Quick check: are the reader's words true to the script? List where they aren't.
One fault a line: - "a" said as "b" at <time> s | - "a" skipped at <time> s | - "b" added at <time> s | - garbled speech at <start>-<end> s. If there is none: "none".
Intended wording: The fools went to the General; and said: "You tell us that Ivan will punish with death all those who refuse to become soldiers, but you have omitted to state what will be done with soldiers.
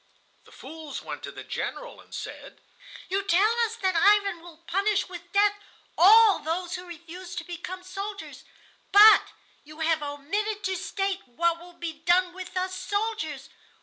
- "us" added at 12.6 s